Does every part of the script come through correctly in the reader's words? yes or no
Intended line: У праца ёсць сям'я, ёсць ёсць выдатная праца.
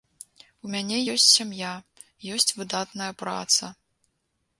no